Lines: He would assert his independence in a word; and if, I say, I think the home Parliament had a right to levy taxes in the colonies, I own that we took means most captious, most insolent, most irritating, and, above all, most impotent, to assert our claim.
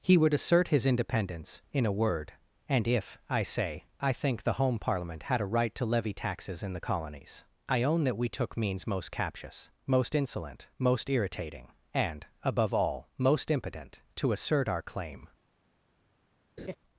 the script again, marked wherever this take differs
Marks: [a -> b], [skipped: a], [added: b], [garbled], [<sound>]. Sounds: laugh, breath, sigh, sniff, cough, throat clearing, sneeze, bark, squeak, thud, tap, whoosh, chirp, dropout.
He would assert his independence in a word; and if, I say, I think the home Parliament had a right to levy taxes in the colonies, I own that we took means most captious, most insolent, most irritating, and, above all, most impotent, to assert our claim. [laugh]